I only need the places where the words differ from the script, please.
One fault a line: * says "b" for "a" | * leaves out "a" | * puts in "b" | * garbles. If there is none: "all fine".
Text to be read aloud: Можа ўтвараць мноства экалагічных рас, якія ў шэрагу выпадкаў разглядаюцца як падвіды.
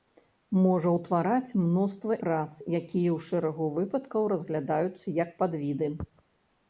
* leaves out "экалагічных"